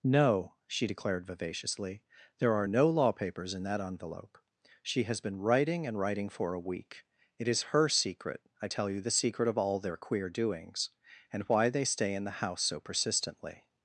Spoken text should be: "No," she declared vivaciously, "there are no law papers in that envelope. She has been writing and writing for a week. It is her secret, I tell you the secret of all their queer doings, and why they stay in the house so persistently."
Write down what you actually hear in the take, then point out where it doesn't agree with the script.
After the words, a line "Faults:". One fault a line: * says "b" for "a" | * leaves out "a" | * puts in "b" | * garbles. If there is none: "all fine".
"No," she declared vivaciously, "there are no law papers in that envelope. She has been writing and writing for a week. It is her secret, I tell you the secret of all their queer doings, and why they stay in the house so persistently."
Faults:
all fine